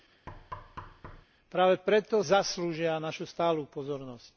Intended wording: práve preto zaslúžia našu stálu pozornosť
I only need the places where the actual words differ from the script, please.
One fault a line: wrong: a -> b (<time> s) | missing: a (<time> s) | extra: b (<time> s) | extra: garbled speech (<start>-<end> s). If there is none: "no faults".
no faults